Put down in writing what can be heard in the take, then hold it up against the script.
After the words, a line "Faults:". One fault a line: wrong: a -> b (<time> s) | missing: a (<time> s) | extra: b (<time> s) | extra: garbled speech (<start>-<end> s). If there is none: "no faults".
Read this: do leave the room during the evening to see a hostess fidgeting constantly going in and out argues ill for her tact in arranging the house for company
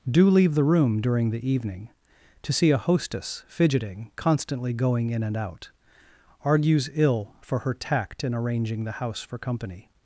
do leave the room during the evening to see a hostess fidgeting constantly going in and out argues ill for her tact in arranging the house for company
Faults:
no faults